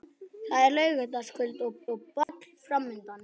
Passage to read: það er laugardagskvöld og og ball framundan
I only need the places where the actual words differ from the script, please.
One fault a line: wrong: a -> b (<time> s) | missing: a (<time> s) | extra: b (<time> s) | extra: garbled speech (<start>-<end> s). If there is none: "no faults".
no faults